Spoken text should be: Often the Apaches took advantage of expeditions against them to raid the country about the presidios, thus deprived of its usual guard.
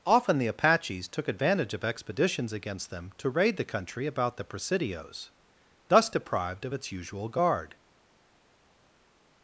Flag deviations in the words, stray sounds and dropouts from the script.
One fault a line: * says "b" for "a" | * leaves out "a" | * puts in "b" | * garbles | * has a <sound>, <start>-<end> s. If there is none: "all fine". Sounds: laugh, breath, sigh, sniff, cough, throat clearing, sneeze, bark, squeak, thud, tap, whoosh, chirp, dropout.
all fine